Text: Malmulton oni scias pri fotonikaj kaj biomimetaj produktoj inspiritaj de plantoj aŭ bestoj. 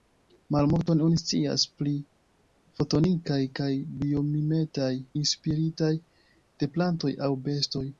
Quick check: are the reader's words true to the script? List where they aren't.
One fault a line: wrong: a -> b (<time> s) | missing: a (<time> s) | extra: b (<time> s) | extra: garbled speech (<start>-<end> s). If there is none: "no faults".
missing: produktoj (4.9 s)